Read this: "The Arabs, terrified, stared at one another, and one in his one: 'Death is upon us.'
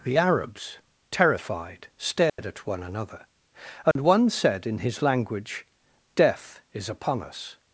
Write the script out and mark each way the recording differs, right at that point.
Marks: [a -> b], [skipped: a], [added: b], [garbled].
"The Arabs, terrified, stared at one another, and one [added: said] in his [one: -> language] 'Death is upon us.'